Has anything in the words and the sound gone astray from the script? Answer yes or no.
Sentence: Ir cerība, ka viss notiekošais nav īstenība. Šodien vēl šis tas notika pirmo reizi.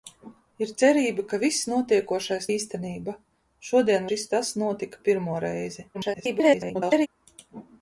yes